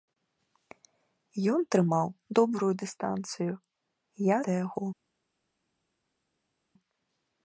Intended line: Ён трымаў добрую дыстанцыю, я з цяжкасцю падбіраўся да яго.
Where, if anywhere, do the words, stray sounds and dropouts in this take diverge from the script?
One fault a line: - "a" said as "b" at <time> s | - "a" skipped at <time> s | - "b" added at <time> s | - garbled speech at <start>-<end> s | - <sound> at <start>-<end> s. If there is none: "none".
- "з цяжкасцю падбіраўся" skipped at 4.4 s